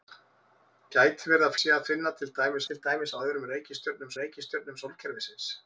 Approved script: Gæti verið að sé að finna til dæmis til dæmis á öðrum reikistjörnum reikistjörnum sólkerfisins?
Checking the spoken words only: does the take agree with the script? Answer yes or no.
yes